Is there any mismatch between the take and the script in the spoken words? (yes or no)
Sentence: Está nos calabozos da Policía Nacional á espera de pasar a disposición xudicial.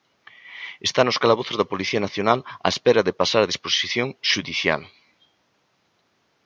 no